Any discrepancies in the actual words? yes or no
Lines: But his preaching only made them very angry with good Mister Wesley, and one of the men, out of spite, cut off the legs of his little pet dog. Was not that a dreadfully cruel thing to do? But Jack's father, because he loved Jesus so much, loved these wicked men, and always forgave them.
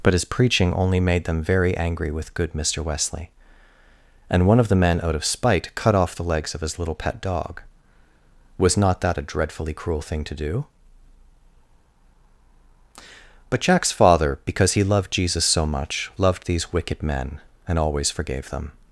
no